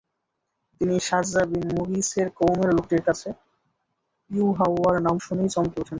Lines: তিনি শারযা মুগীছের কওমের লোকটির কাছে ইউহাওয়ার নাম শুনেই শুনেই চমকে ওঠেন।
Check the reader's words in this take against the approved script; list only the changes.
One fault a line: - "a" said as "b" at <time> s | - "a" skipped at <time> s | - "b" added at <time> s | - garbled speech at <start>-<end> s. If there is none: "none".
- "বিন" added at 1.4 s
- "শুনেই" skipped at 5.5 s